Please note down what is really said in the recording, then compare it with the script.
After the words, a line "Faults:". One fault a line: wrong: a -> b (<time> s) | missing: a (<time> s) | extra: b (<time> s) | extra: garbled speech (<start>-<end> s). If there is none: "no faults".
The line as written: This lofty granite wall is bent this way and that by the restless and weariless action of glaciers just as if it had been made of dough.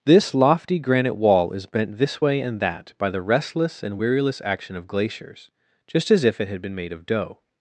This lofty granite wall is bent this way and that by the restless and weariless action of glaciers just as if it had been made of dough.
Faults:
no faults